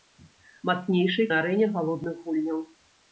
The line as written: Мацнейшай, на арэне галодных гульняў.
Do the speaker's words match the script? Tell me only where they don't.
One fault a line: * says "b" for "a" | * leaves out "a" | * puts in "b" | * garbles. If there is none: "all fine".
all fine